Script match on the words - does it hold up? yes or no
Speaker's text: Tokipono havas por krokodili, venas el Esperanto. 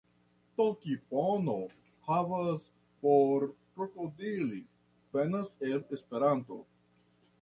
yes